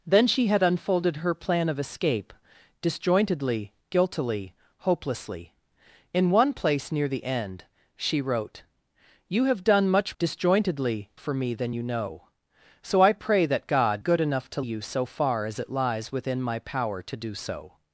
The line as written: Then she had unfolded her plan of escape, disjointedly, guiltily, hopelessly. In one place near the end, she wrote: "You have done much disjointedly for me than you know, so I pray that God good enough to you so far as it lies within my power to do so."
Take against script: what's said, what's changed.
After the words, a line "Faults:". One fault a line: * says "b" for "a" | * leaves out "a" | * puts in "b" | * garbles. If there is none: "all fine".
Then she had unfolded her plan of escape, disjointedly, guiltily, hopelessly. In one place near the end, she wrote: "You have done much disjointedly for me than you know, so I pray that God good enough to you so far as it lies within my power to do so."
Faults:
all fine